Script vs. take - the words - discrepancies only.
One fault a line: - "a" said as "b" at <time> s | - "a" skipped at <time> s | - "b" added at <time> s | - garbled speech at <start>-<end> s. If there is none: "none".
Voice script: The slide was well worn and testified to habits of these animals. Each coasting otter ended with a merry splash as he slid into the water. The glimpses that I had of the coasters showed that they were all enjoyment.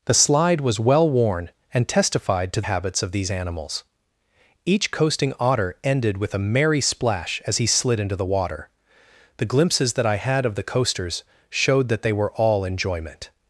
none